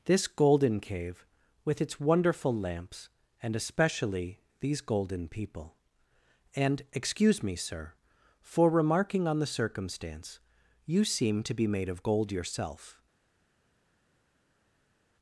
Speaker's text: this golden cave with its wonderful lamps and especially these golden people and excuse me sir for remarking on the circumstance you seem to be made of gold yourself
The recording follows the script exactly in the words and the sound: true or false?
true